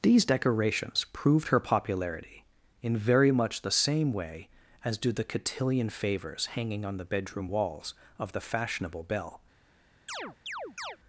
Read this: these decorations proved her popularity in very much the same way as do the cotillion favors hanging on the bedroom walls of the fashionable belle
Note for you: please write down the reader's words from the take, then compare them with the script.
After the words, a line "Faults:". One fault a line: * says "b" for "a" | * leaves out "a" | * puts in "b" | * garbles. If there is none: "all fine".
these decorations proved her popularity in very much the same way as do the cotillion favors hanging on the bedroom walls of the fashionable belle
Faults:
all fine